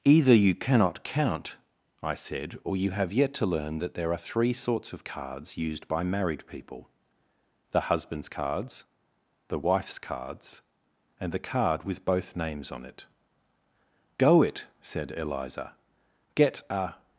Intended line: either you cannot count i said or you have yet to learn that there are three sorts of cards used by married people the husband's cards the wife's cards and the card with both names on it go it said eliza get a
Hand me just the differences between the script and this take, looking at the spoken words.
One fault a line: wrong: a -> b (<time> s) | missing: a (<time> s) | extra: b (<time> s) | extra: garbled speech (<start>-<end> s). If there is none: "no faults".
no faults